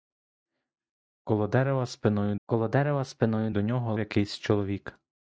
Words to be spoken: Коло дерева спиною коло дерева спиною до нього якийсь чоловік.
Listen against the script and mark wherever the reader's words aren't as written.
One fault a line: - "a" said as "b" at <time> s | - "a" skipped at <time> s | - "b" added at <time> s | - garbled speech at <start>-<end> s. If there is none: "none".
none